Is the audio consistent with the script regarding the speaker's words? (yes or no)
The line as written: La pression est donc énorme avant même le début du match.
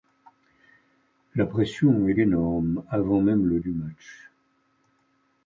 no